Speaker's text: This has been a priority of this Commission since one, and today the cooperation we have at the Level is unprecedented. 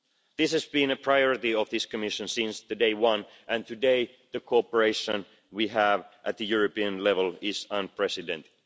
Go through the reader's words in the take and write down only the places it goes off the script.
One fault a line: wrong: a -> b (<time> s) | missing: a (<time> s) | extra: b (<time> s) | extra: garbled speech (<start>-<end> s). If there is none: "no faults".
extra: day (2.6 s)
extra: European (6.4 s)